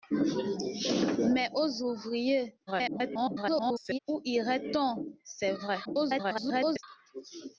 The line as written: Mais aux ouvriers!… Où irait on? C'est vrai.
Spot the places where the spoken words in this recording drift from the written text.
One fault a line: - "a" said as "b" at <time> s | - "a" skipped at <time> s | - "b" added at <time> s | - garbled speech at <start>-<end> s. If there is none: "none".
- garbled speech at 2.7-4.0 s
- garbled speech at 5.8-6.8 s